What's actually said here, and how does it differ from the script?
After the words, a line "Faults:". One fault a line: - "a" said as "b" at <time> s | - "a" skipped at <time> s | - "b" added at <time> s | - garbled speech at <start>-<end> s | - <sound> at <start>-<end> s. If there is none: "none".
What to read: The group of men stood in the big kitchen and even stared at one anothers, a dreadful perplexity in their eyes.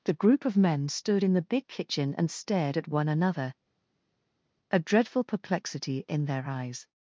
The group of men stood in the big kitchen and stared at one another, a dreadful perplexity in their eyes.
Faults:
- "even" skipped at 2.3 s
- "anothers" said as "another" at 3.1 s